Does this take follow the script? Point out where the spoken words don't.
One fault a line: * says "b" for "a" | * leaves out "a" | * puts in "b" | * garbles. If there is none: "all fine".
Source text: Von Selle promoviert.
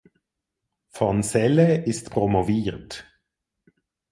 * puts in "ist"